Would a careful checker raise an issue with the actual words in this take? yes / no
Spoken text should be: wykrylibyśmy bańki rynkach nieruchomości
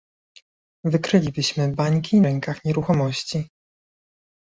no